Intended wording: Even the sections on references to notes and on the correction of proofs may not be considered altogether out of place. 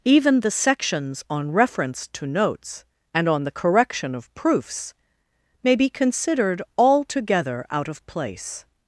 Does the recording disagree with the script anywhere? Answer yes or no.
yes